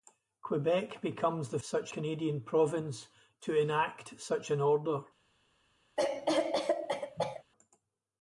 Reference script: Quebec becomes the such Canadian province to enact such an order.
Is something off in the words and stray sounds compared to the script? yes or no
yes